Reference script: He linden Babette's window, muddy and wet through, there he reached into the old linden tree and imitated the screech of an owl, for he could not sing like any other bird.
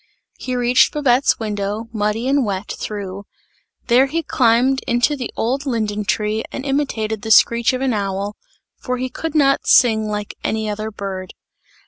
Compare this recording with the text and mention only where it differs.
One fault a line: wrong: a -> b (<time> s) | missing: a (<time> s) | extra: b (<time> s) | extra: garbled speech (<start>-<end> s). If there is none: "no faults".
wrong: linden -> reached (0.6 s)
wrong: reached -> climbed (4.2 s)